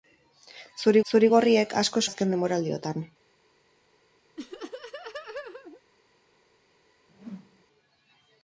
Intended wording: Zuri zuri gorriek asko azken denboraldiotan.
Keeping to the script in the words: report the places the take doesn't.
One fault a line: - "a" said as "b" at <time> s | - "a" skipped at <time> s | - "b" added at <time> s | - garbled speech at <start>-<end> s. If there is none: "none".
none